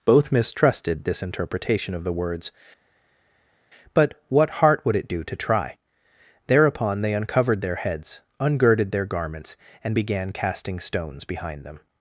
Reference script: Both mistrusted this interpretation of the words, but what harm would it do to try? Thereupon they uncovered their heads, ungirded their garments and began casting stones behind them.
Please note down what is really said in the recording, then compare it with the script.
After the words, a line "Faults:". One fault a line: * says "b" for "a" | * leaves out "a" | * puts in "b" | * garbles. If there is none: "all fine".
Both mistrusted this interpretation of the words, but what heart would it do to try? Thereupon they uncovered their heads, ungirded their garments and began casting stones behind them.
Faults:
* says "heart" for "harm"